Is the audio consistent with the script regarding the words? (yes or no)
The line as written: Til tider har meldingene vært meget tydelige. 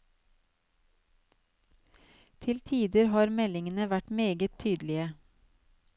yes